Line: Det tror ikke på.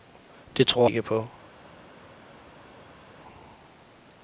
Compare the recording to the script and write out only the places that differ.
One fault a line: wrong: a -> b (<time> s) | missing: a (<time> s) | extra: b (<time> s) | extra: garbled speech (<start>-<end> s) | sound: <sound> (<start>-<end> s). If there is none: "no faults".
no faults